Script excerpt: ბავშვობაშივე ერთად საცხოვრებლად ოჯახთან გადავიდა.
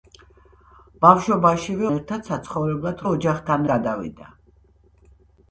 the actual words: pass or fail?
pass